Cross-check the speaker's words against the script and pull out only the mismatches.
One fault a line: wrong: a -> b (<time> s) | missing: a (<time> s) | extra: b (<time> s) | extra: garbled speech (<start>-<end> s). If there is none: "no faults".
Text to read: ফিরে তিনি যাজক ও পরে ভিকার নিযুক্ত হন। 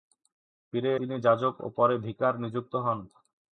no faults